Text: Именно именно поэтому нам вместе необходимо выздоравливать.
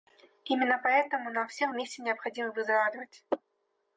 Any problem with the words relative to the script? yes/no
yes